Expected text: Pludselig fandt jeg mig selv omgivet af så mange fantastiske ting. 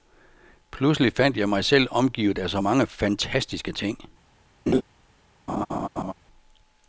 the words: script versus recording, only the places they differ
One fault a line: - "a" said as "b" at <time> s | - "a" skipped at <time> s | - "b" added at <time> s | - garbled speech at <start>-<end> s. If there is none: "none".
none